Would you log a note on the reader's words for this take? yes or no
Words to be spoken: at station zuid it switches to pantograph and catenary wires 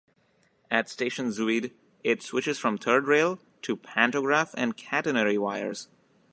yes